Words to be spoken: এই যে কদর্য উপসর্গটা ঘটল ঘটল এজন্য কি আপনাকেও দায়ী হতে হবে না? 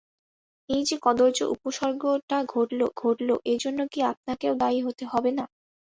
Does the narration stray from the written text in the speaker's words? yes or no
no